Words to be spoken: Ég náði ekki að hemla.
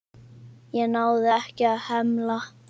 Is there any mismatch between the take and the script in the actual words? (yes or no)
no